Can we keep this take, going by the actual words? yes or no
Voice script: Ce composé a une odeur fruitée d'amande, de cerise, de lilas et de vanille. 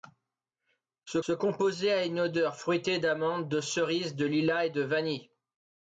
no